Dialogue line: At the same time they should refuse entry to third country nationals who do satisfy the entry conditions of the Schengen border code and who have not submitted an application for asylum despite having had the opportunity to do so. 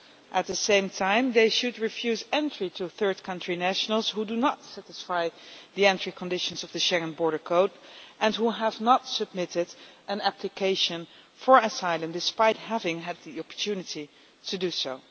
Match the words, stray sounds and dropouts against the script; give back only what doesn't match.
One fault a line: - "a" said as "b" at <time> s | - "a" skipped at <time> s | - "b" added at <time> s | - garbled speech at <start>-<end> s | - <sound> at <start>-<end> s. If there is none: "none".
- "not" added at 4.3 s